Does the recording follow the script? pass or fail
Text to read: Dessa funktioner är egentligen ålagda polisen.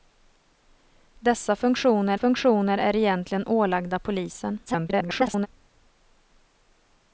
fail